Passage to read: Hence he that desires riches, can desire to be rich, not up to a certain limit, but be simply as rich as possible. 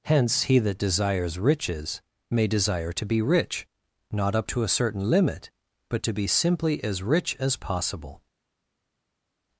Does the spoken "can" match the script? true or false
false